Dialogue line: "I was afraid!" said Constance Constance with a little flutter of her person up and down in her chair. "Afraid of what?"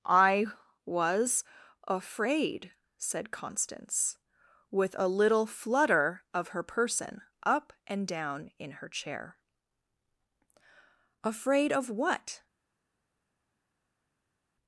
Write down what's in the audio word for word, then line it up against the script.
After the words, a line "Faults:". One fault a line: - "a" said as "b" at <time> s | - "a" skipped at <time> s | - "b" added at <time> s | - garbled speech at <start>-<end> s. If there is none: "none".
"I was afraid!" said Constance with a little flutter of her person up and down in her chair. "Afraid of what?"
Faults:
- "Constance" skipped at 4.2 s